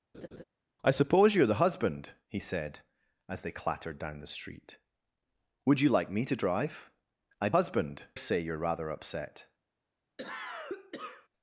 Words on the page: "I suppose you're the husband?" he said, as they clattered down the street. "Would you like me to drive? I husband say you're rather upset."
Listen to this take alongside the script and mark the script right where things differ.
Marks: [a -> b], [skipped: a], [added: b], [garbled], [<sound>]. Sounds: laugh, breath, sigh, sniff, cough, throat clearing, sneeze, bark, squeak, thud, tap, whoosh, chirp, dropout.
[laugh] "I suppose you're the husband?" he said, as they clattered down the street. "Would you like me to drive? I husband say you're rather upset." [cough]